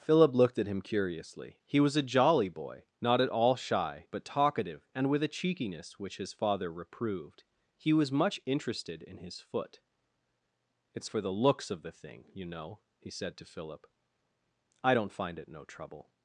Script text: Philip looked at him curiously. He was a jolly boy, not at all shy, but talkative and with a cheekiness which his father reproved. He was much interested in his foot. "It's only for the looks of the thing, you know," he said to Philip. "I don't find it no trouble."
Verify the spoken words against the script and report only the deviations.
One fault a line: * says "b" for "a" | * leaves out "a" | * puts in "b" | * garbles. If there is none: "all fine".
* leaves out "only"